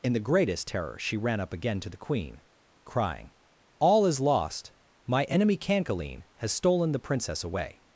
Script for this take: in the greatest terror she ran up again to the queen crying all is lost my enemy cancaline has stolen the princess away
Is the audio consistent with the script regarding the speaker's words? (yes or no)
yes